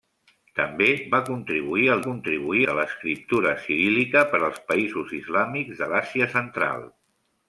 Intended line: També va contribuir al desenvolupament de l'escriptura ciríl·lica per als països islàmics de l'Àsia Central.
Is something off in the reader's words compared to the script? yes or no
yes